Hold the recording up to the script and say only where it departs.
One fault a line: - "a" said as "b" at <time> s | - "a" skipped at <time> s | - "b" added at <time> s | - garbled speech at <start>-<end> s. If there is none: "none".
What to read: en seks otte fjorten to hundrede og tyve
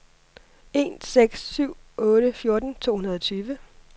- "syv" added at 1.4 s